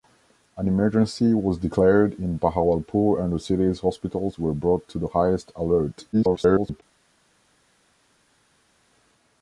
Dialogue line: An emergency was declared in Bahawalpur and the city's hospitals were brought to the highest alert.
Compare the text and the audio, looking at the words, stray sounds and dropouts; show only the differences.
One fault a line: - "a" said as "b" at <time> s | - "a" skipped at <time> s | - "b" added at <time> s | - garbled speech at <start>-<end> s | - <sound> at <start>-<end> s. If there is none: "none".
- garbled speech at 6.1-6.8 s